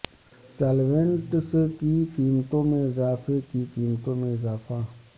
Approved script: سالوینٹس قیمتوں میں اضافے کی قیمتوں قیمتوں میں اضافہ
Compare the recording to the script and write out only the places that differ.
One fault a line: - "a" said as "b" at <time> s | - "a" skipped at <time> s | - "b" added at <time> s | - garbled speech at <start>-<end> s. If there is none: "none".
- "کی" added at 1.8 s
- "قیمتوں" skipped at 4.2 s